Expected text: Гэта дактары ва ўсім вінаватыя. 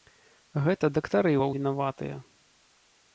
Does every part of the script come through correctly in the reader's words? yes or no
no